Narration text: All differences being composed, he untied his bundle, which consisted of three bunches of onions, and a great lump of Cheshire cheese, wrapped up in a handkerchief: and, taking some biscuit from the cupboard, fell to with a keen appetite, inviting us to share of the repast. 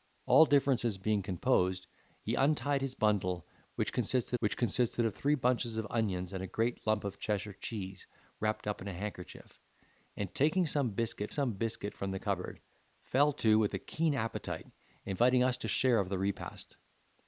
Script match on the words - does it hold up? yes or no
no